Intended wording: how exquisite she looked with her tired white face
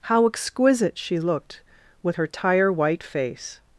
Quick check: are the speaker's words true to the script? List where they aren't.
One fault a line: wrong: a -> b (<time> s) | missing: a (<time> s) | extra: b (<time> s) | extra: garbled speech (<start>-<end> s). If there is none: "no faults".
wrong: tired -> tire (2.3 s)